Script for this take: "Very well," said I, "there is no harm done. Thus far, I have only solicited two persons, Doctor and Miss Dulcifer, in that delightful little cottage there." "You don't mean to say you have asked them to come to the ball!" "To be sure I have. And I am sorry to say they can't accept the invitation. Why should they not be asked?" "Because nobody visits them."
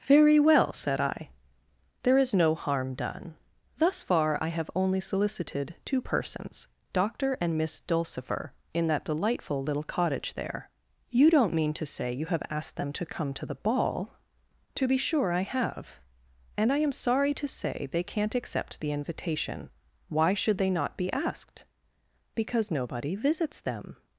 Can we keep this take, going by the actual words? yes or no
yes